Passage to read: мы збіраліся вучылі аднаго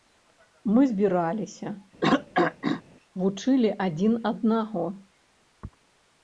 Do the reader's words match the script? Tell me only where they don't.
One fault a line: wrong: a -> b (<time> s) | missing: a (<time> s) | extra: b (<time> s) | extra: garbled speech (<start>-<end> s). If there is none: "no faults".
extra: адзін (3.9 s)